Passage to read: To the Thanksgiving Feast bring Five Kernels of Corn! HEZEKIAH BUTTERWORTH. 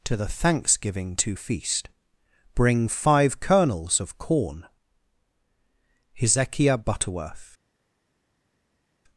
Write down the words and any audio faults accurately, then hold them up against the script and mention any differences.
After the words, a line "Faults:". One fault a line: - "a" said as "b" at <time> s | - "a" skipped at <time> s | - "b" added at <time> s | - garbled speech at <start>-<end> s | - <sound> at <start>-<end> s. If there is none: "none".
To the Thanksgiving to Feast bring Five Kernels of Corn! HEZEKIAH BUTTERWORTH.
Faults:
- "to" added at 1.2 s